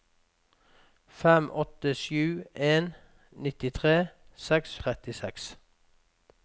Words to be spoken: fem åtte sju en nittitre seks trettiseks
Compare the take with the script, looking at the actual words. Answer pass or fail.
pass